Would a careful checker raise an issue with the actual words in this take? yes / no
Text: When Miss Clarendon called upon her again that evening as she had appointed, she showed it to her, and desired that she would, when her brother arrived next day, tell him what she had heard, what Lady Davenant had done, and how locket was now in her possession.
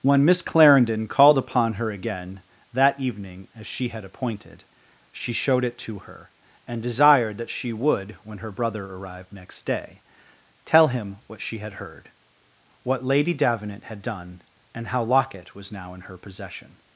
no